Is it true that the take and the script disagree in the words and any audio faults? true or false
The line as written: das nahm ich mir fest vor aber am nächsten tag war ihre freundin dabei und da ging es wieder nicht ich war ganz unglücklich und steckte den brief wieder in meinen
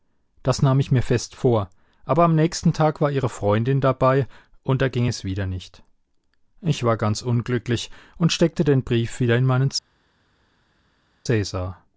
false